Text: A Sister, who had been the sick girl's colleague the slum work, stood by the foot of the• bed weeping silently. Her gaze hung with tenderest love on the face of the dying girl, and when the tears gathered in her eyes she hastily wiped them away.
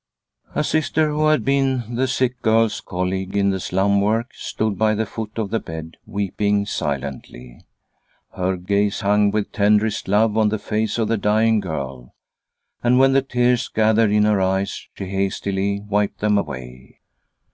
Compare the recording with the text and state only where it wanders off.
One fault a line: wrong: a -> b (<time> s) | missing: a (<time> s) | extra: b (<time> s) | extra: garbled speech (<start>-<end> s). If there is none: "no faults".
extra: in (3.4 s)